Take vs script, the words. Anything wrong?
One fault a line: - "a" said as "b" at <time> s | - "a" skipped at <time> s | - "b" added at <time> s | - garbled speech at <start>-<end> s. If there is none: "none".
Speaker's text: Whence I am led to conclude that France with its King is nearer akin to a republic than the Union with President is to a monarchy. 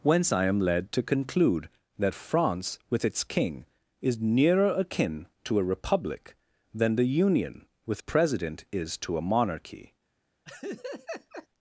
none